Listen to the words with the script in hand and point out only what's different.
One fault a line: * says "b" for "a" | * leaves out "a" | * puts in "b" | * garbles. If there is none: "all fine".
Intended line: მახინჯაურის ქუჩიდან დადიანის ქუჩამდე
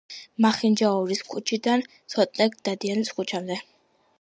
* puts in "ცოტნე"